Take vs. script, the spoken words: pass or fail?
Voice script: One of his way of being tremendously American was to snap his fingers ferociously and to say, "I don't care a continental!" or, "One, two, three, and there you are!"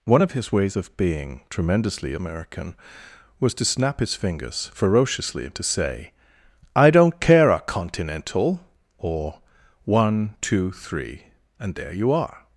fail